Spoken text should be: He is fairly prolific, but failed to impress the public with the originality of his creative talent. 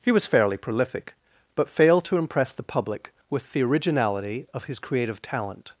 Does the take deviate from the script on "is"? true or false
true